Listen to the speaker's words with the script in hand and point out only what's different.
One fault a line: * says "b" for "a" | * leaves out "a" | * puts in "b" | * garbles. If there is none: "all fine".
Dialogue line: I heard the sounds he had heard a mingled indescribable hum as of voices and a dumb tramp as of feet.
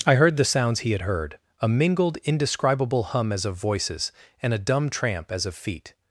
all fine